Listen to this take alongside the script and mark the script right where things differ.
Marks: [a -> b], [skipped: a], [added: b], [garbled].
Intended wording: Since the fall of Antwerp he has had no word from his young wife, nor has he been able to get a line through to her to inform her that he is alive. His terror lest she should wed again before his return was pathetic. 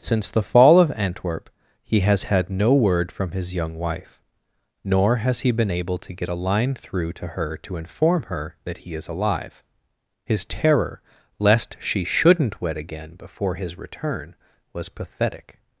Since the fall of Antwerp he has had no word from his young wife, nor has he been able to get a line through to her to inform her that he is alive. His terror lest she [should -> shouldn't] wed again before his return was pathetic.